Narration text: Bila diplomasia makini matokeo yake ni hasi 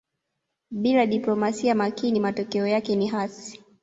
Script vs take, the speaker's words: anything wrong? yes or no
no